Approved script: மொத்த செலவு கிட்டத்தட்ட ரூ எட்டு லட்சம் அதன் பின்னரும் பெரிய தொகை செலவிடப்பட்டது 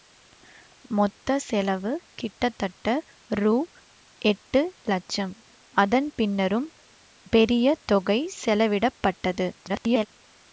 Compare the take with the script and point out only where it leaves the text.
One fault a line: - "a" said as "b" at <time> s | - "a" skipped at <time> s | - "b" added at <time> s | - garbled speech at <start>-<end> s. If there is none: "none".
- garbled speech at 9.6-10.1 s